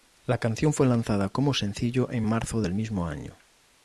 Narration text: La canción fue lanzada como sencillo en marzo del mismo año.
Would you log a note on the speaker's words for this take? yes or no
no